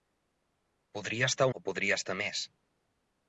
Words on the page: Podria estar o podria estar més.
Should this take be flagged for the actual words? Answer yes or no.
no